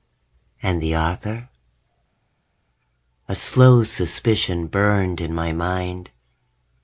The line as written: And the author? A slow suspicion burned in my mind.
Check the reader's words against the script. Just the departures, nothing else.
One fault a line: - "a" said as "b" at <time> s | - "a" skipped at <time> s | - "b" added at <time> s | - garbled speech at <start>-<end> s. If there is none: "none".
none